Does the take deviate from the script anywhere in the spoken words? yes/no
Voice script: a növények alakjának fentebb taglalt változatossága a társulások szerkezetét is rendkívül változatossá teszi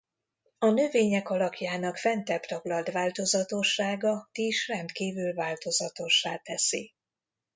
yes